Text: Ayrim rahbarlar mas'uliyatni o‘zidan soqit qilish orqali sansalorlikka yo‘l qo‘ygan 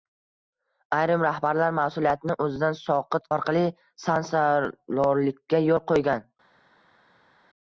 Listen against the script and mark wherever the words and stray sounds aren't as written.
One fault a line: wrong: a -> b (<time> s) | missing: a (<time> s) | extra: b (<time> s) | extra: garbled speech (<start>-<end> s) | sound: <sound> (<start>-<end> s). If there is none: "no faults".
missing: qilish (3.3 s)